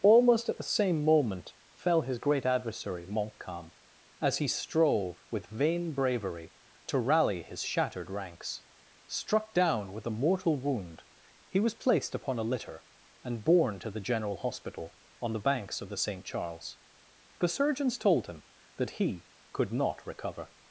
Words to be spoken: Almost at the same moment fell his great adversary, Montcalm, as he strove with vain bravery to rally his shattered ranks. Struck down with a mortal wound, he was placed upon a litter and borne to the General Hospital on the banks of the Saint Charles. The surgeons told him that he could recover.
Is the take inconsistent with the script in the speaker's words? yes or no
yes